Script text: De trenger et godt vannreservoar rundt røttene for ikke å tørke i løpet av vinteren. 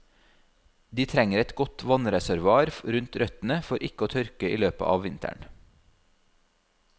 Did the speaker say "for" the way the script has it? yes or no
yes